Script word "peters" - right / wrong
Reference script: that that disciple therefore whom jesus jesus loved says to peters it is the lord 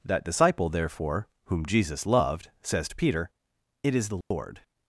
wrong